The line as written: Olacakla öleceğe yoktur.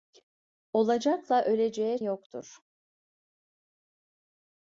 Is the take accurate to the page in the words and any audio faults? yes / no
yes